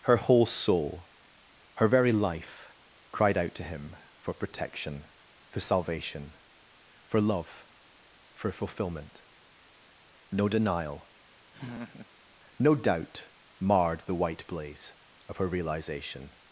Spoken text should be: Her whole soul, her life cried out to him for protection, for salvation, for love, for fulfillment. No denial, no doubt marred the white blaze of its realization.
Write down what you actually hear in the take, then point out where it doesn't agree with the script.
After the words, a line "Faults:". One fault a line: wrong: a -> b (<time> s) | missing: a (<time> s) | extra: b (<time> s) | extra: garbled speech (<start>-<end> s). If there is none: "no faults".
Her whole soul, her very life cried out to him for protection, for salvation, for love, for fulfillment. No denial, no doubt marred the white blaze of her realization.
Faults:
extra: very (1.9 s)
wrong: its -> her (15.4 s)